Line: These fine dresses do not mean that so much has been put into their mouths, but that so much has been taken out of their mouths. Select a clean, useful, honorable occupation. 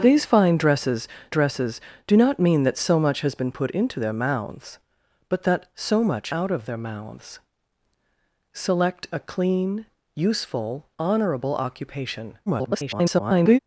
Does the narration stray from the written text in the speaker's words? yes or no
yes